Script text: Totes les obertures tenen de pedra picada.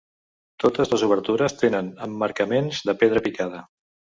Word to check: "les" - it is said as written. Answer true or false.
true